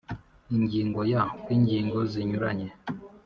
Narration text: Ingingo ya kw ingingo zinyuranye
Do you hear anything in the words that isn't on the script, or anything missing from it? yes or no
no